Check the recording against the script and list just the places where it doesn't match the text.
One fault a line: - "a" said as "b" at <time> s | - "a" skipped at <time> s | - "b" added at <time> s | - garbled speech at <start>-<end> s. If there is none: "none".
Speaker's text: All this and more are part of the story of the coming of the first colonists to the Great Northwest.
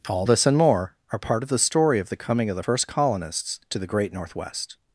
none